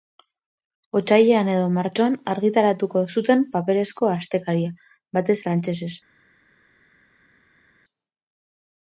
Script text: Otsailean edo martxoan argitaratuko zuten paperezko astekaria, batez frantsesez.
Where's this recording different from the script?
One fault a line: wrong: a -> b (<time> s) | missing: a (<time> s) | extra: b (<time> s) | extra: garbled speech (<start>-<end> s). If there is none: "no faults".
no faults